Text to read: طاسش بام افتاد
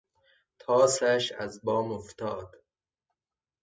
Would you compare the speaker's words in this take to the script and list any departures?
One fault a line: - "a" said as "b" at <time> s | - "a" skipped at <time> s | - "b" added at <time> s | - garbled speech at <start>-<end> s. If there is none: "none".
- "از" added at 1.3 s